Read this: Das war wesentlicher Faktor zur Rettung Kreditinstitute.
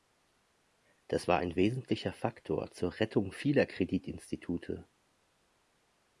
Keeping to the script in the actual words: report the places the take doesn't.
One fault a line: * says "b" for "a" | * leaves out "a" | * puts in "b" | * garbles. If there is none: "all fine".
* puts in "ein"
* puts in "vieler"